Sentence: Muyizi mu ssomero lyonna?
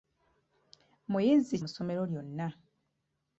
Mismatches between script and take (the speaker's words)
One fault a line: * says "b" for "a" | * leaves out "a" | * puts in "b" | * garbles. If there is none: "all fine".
all fine